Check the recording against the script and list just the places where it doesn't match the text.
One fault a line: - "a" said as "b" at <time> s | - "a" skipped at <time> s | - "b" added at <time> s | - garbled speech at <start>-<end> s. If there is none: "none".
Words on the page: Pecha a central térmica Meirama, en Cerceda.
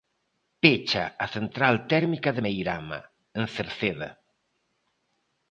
- "de" added at 2.3 s